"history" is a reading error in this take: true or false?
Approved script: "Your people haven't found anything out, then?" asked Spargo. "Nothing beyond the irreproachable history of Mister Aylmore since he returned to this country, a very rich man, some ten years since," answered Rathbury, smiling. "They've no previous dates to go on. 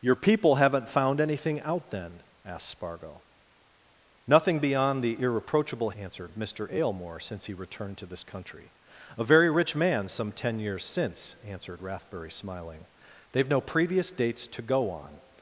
true